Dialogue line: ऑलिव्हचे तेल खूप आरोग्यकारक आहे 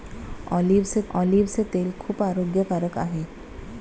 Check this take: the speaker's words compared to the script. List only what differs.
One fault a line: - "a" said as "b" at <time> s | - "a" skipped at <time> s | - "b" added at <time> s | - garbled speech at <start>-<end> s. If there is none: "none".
- "ऑलिव्हचे" added at 1.1 s